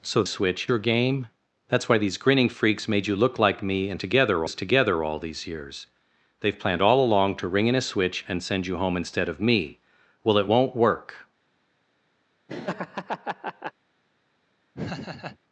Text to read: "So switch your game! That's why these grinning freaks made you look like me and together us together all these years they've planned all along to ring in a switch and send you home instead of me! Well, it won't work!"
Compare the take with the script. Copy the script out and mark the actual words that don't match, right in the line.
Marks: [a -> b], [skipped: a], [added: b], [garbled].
"So switch your game! That's why these grinning freaks made you look like me and together us together all these years they've planned all along to ring in a switch and send you home instead of me! Well, it won't work!"